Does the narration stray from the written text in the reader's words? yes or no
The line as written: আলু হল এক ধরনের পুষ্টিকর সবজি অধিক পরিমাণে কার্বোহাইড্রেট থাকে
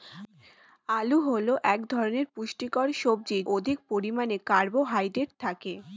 no